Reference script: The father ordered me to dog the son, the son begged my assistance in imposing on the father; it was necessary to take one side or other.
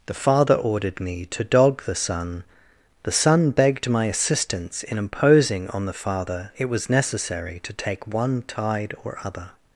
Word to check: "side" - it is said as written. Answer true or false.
false